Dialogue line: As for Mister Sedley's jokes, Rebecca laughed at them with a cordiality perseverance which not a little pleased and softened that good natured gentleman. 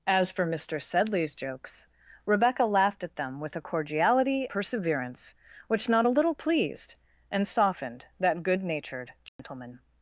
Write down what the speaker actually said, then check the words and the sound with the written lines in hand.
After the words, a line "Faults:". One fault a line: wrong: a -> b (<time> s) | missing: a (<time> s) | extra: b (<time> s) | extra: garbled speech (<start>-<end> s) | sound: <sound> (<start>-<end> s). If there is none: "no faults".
As for Mister Sedley's jokes, Rebecca laughed at them with a cordiality perseverance which not a little pleased and softened that good natured gentleman.
Faults:
sound: dropout (9.3-9.4 s)